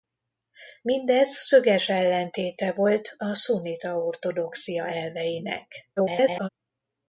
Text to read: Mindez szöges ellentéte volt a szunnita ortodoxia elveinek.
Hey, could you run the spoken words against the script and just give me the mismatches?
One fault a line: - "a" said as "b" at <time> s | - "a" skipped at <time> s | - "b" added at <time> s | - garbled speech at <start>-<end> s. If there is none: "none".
- garbled speech at 6.0-6.5 s